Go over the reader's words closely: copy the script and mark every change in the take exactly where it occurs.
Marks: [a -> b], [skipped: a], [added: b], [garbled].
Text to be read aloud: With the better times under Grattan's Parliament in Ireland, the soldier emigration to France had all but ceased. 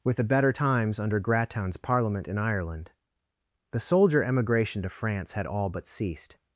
With the better times under Grattan's Parliament in Ireland, the soldier emigration to France had all but ceased.